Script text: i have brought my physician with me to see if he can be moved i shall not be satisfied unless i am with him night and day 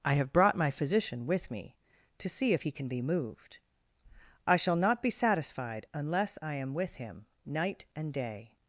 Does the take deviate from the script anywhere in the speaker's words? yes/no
no